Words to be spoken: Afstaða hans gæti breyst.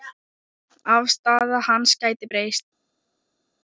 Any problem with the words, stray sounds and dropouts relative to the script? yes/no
no